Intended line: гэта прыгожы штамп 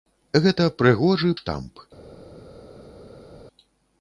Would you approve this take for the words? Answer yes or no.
yes